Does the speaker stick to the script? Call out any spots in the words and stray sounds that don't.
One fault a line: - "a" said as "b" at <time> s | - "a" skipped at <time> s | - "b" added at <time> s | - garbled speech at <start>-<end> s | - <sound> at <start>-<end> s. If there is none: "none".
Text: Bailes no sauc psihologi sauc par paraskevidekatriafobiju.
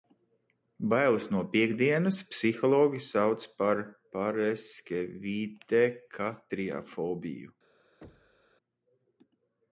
- "sauc" said as "piektdienas" at 1.6 s
- thud at 8.0-8.5 s